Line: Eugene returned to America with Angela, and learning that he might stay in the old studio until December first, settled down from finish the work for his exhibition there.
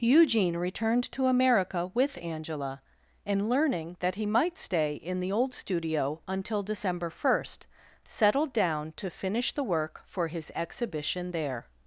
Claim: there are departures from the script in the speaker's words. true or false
true